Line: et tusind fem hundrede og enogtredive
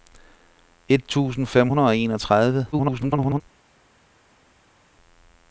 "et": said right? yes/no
yes